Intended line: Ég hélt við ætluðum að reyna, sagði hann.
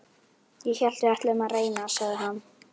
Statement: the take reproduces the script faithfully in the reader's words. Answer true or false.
true